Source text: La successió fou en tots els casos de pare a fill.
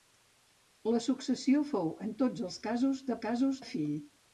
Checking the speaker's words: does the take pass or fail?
fail